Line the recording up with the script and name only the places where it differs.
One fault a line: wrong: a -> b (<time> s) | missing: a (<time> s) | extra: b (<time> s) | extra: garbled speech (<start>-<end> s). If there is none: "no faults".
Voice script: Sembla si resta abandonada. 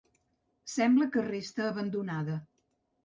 wrong: si -> que (1.1 s)